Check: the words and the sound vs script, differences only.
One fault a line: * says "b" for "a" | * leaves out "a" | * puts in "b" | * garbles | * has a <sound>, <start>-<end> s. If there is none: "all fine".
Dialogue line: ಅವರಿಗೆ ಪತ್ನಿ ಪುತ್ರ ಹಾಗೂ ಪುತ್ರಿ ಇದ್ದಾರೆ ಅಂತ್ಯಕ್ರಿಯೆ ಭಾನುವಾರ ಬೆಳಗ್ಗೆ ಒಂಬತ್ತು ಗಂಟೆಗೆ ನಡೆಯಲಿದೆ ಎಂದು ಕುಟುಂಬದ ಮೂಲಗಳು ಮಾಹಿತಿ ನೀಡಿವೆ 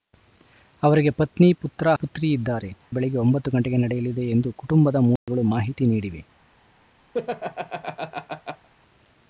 * leaves out "ಹಾಗೂ"
* leaves out "ಅಂತ್ಯಕ್ರಿಯೆ ಭಾನುವಾರ"
* has a dropout, 5.2-5.3 s
* has a laugh, 7.1-8.7 s